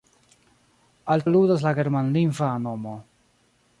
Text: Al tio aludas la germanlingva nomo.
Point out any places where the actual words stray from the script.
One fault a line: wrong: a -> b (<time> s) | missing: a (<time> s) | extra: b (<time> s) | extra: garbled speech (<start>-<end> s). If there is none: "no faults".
missing: tio (1.2 s)